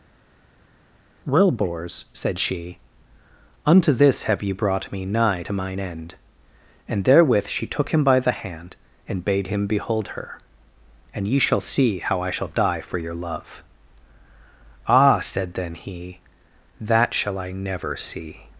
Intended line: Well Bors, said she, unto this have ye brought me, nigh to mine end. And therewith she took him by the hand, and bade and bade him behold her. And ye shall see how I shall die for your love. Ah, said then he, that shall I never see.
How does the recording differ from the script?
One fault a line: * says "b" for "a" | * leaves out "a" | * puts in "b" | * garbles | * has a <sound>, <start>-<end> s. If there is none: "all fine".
* leaves out "and bade"